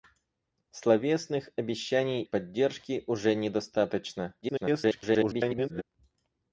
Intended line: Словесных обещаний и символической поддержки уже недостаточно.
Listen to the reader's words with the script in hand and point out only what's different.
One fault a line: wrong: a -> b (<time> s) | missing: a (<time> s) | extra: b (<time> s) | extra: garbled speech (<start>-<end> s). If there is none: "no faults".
missing: и символической (2.2 s)
extra: garbled speech (4.4-5.8 s)